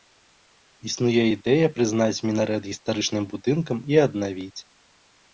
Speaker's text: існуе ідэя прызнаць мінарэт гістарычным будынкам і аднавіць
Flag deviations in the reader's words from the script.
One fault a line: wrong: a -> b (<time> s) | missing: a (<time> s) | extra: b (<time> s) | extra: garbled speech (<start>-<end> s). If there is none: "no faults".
no faults